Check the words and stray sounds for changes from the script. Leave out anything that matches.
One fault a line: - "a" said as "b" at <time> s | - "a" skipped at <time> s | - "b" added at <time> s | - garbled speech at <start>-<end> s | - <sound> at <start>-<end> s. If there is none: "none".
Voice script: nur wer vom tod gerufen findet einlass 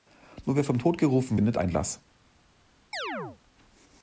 - chirp at 2.9-3.4 s